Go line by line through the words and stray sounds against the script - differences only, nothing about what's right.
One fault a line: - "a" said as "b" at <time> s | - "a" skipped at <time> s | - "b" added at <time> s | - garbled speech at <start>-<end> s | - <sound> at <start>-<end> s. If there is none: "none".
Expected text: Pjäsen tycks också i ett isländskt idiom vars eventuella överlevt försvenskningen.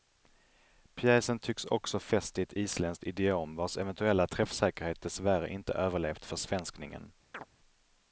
- "fäst" added at 2.0 s
- "träffsäkerhet dessvärre inte" added at 4.3 s
- chirp at 7.3-7.5 s